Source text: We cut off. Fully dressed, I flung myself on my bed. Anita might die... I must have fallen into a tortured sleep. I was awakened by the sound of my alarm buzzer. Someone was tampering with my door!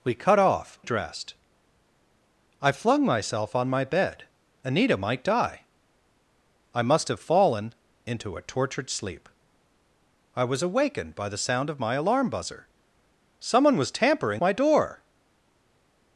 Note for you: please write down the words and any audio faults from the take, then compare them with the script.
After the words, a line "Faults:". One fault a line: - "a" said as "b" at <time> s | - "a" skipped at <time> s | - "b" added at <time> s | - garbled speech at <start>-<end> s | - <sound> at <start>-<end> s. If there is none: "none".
We cut off. Dressed, I flung myself on my bed. Anita might die... I must have fallen into a tortured sleep. I was awakened by the sound of my alarm buzzer. Someone was tampering my door!
Faults:
- "Fully" skipped at 0.8 s
- "with" skipped at 14.4 s